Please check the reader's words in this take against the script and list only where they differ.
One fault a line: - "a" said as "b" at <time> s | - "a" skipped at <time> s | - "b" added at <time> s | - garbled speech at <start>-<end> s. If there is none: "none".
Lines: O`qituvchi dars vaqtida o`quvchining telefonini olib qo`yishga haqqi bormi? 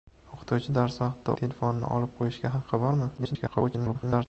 - "o`quvchining" skipped at 1.4 s
- garbled speech at 3.2-4.3 s